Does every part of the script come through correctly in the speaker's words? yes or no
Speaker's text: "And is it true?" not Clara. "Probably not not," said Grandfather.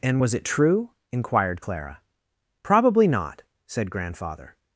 no